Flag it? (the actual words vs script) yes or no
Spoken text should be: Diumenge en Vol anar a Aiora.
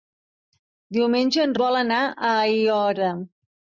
no